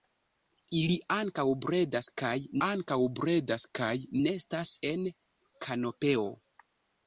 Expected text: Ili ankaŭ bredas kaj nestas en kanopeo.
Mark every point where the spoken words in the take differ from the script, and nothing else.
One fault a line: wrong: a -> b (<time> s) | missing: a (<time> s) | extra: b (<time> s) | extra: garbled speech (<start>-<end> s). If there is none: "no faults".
extra: ankaŭ bredas kaj (2.7 s)